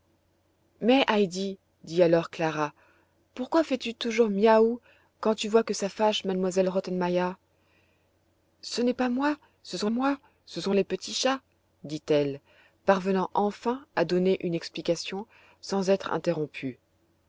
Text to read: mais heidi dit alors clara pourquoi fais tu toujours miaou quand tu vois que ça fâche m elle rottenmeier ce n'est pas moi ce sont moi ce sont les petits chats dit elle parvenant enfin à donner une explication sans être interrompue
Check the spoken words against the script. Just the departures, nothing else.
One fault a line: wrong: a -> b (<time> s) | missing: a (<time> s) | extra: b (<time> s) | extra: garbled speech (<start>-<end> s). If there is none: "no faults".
no faults